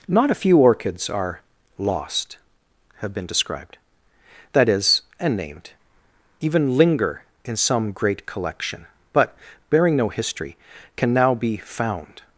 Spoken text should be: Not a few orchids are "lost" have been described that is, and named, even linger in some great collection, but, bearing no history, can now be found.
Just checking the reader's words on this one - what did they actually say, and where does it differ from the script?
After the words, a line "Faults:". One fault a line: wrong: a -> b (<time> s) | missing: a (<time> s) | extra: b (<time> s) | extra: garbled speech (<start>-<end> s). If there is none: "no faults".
Not a few orchids are "lost" have been described that is, and named, even linger in some great collection, but, bearing no history, can now be found.
Faults:
no faults